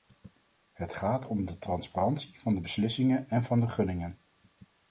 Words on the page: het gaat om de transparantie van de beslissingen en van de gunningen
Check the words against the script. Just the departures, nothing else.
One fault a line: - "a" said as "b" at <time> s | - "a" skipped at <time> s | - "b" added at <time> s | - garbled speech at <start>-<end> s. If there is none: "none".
none